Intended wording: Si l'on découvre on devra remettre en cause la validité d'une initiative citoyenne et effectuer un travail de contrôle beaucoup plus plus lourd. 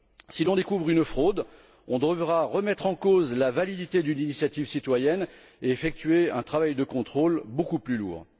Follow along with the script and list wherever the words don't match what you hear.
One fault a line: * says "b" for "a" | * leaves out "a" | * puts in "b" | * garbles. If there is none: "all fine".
* puts in "une fraude"
* leaves out "plus"